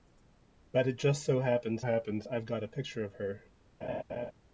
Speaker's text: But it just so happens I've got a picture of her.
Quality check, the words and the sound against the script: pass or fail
fail